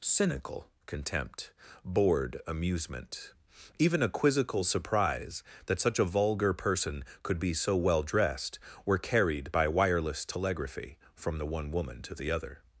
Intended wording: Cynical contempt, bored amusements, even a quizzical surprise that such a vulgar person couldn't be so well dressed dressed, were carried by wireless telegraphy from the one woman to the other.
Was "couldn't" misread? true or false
true